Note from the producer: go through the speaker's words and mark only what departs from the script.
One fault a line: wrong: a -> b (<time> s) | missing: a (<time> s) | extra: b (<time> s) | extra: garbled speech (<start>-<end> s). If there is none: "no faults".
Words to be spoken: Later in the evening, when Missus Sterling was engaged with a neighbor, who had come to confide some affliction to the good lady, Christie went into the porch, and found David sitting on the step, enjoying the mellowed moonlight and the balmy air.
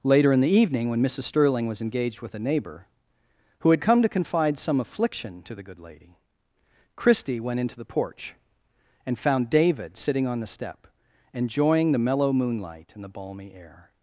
wrong: mellowed -> mellow (12.0 s)